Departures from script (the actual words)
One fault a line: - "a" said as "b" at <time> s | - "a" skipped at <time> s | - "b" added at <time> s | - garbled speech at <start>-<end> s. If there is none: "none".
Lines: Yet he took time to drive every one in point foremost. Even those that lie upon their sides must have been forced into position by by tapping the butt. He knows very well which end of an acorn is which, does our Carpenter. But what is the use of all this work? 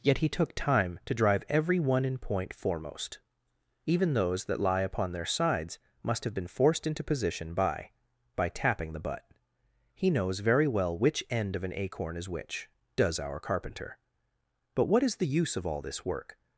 none